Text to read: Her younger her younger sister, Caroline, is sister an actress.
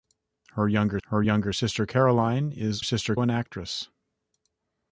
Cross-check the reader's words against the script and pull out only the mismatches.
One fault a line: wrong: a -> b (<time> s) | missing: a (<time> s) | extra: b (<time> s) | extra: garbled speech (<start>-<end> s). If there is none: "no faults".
no faults